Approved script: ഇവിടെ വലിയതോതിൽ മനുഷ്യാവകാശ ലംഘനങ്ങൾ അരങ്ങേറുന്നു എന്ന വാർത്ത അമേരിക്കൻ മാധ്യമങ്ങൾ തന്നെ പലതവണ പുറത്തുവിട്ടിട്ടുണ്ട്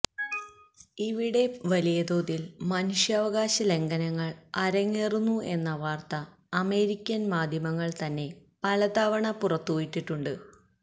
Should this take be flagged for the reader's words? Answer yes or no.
no